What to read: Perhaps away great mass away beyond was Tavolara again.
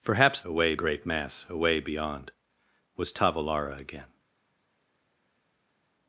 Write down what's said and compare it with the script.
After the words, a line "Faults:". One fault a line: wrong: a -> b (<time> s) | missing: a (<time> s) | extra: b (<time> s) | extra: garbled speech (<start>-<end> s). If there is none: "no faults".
Perhaps away great mass away beyond was Tavolara again.
Faults:
no faults